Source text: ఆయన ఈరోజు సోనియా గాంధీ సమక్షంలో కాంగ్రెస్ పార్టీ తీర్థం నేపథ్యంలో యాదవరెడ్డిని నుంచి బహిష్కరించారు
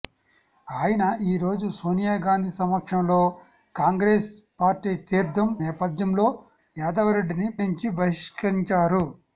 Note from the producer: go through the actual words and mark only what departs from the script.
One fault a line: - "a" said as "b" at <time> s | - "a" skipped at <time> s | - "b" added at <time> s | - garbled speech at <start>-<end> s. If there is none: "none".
none